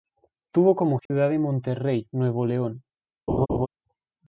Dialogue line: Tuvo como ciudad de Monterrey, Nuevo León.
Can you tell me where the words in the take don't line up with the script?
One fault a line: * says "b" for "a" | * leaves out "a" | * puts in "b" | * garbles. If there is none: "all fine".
all fine